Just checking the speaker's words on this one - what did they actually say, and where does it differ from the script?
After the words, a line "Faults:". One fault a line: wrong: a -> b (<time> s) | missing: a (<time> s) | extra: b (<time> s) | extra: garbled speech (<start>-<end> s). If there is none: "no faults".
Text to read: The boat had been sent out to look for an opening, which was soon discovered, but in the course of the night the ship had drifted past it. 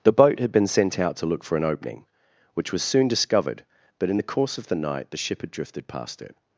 The boat had been sent out to look for an opening, which was soon discovered, but in the course of the night the ship had drifted past it.
Faults:
no faults